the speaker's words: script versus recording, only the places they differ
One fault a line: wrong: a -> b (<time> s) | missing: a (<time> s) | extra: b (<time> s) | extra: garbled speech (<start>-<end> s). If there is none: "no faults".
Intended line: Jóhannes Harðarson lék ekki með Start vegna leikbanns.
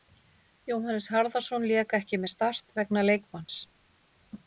no faults